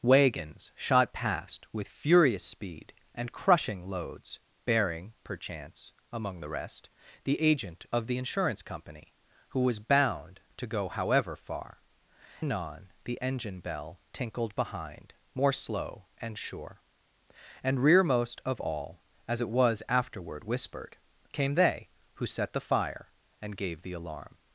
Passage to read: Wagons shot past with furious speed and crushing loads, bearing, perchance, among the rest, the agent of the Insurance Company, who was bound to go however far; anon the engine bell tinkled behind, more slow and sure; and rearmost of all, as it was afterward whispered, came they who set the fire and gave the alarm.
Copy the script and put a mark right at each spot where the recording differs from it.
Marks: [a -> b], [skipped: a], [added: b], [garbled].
Wagons shot past with furious speed and crushing loads, bearing, perchance, among the rest, the agent of the Insurance Company, who was bound to go however far; anon the engine bell tinkled behind, more slow and sure; and rearmost of all, as it was afterward whispered, came they who set the fire and gave the alarm.